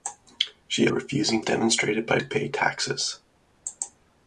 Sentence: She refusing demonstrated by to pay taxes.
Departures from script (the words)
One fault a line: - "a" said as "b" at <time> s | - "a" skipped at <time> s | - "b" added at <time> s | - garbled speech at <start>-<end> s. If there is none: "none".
none